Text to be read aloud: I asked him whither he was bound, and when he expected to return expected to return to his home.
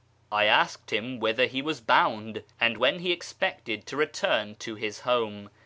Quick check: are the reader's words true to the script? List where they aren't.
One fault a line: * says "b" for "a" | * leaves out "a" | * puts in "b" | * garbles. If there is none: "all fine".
* leaves out "expected to return"